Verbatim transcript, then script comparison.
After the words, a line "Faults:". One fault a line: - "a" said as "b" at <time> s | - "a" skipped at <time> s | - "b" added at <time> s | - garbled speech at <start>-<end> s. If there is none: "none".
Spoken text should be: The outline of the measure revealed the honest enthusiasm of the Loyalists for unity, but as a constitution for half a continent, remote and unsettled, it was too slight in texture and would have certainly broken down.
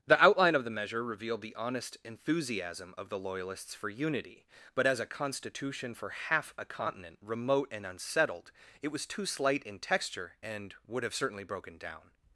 The outline of the measure revealed the honest enthusiasm of the Loyalists for unity, but as a constitution for half a continent, remote and unsettled, it was too slight in texture and would have certainly broken down.
Faults:
none